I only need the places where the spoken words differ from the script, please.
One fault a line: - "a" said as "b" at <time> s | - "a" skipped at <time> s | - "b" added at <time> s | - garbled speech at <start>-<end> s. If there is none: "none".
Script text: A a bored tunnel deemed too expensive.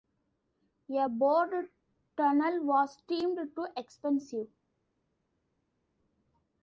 - "a" skipped at 1.1 s
- "was" added at 2.6 s